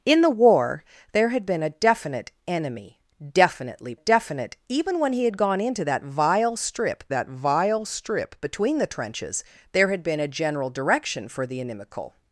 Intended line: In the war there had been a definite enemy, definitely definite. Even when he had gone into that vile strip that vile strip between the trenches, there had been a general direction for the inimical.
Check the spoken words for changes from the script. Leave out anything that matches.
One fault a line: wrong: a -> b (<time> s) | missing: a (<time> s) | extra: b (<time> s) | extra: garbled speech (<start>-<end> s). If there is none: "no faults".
no faults